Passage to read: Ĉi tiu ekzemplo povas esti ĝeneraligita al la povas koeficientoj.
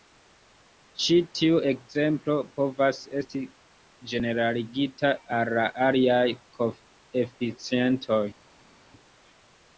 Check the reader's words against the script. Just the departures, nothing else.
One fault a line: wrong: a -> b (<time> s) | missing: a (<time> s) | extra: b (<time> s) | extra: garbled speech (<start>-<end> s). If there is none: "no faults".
wrong: povas -> aliaj (5.9 s)